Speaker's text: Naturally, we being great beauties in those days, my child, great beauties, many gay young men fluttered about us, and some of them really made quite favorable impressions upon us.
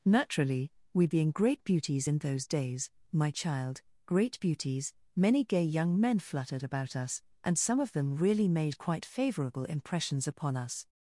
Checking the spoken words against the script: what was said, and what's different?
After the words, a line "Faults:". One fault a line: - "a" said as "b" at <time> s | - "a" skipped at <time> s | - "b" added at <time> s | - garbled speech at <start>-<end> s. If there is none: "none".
Naturally, we being great beauties in those days, my child, great beauties, many gay young men fluttered about us, and some of them really made quite favorable impressions upon us.
Faults:
none